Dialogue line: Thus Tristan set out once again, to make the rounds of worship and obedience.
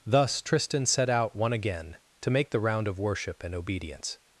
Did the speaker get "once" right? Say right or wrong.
wrong